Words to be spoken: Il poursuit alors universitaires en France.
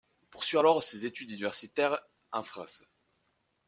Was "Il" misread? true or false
false